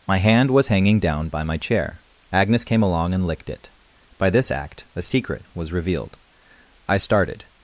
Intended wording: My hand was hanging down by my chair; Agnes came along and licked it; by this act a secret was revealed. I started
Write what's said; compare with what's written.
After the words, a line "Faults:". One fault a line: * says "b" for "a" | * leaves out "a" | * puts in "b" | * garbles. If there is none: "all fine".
My hand was hanging down by my chair; Agnes came along and licked it; by this act a secret was revealed. I started
Faults:
all fine